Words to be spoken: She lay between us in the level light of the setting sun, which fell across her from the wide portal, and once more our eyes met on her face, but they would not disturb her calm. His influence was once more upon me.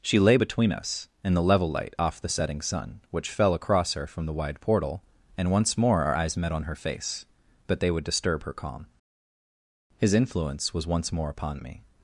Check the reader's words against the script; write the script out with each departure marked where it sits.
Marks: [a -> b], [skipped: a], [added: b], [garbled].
She lay between us in the level light [of -> off] the setting sun, which fell across her from the wide portal, and once more our eyes met on her face, but they would [skipped: not] disturb her calm. His influence was once more upon me.